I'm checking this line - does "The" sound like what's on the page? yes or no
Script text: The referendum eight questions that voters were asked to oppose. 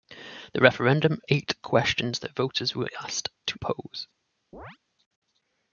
yes